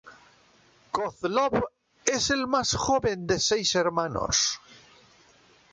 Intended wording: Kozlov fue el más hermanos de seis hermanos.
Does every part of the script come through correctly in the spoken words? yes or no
no